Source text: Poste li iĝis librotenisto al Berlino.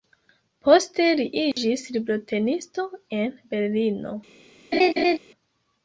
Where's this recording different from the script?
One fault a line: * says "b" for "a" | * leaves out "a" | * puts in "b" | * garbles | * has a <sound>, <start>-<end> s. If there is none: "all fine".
* has a dropout, 1.5-1.6 s
* says "en" for "al"
* has a laugh, 4.7-5.2 s